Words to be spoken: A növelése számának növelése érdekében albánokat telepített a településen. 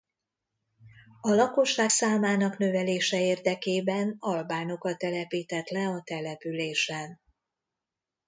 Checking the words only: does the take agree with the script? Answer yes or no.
no